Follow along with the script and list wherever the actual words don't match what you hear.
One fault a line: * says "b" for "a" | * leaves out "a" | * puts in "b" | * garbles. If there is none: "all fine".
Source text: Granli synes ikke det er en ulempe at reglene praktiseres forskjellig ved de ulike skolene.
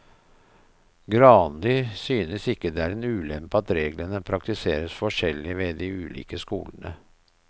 all fine